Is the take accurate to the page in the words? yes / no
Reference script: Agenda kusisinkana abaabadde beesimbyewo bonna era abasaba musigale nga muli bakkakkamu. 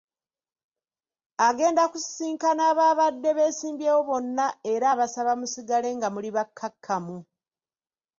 yes